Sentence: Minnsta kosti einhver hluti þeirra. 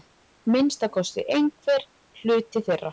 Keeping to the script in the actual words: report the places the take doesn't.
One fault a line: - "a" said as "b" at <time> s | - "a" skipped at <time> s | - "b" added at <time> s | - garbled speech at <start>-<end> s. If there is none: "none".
none